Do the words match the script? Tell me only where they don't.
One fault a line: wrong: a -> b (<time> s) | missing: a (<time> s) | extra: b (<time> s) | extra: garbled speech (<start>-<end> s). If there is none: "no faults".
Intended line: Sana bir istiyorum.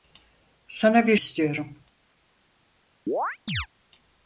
no faults